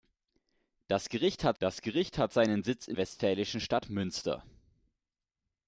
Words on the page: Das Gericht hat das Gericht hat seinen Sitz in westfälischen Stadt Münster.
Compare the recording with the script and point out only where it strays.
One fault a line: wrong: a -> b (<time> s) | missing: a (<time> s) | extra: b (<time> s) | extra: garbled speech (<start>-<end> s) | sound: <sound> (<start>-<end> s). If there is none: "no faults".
no faults